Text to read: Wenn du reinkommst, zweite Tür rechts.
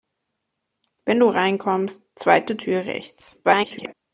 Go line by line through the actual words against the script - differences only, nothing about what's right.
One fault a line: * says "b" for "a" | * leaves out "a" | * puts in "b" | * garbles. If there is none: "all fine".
* garbles